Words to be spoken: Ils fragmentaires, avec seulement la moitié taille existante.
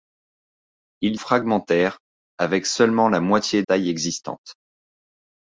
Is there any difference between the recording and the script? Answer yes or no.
no